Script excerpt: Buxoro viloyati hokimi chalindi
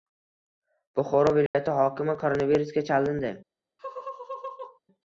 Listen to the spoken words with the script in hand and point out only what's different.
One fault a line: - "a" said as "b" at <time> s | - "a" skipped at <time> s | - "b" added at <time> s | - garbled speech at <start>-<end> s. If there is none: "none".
- "koronavirusga" added at 2.2 s